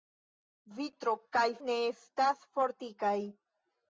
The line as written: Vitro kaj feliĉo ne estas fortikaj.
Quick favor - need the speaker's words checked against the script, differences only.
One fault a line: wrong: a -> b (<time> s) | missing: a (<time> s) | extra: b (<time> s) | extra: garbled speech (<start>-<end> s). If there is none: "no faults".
missing: feliĉo (1.4 s)